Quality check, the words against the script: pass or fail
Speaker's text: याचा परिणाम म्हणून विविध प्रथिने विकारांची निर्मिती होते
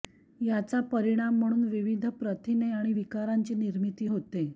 fail